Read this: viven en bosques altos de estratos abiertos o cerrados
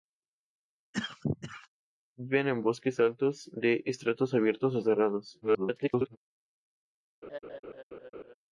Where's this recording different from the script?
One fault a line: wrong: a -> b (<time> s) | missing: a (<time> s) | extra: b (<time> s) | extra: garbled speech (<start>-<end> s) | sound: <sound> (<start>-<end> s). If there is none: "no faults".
sound: cough (0.9-1.7 s)
extra: garbled speech (5.4-6.2 s)
sound: laugh (7.2-8.3 s)